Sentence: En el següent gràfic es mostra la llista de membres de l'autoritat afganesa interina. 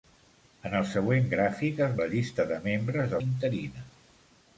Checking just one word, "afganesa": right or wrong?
wrong